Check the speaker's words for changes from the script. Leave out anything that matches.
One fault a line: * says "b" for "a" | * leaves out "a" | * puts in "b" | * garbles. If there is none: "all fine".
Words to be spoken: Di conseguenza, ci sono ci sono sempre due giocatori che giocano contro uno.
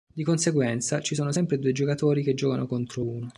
* leaves out "ci sono"